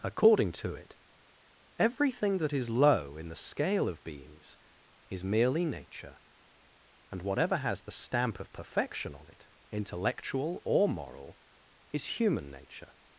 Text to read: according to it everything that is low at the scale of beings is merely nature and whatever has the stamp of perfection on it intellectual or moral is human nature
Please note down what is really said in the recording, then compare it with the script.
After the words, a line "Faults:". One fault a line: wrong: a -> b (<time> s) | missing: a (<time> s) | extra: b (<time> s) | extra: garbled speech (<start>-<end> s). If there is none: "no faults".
according to it everything that is low in the scale of beings is merely nature and whatever has the stamp of perfection on it intellectual or moral is human nature
Faults:
wrong: at -> in (3.2 s)